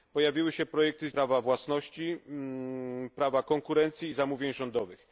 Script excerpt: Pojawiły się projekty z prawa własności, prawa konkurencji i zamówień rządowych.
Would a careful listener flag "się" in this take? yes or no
no